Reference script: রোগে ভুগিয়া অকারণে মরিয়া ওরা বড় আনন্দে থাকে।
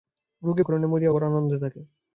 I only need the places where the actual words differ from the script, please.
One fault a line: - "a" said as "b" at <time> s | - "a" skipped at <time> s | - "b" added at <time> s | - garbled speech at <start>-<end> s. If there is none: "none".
- "ভুগিয়া" skipped at 0.6 s
- "ওরা" skipped at 1.1 s